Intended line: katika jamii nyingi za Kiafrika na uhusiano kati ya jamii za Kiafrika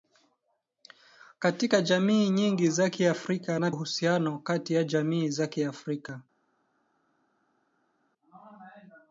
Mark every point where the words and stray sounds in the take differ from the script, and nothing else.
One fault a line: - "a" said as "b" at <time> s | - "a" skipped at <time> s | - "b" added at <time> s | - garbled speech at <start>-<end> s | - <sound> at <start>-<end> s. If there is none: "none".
none